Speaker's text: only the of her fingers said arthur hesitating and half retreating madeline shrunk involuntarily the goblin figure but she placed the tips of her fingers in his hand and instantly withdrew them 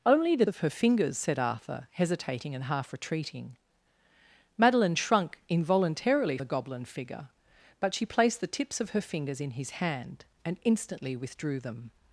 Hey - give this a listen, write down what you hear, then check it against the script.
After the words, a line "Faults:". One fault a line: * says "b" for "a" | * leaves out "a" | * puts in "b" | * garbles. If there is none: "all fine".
only the of her fingers said arthur hesitating and half retreating madeline shrunk involuntarily the goblin figure but she placed the tips of her fingers in his hand and instantly withdrew them
Faults:
all fine